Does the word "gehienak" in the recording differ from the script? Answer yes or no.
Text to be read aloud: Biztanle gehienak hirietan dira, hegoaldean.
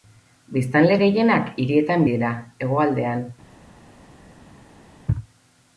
no